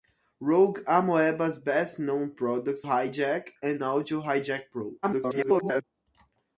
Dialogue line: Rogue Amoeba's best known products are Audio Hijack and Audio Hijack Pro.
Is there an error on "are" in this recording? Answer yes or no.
yes